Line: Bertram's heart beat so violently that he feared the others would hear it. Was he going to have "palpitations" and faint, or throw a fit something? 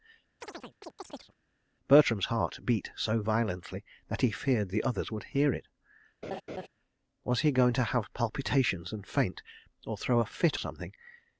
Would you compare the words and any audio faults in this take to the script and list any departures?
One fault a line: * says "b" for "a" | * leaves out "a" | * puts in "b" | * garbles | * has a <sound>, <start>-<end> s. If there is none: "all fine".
* has a chirp, 0.4-1.4 s
* has a laugh, 6.2-6.7 s